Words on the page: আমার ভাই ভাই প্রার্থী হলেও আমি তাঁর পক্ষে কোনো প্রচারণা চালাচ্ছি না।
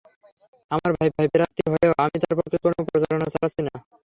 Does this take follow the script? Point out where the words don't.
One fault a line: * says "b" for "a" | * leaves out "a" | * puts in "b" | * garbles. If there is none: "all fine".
all fine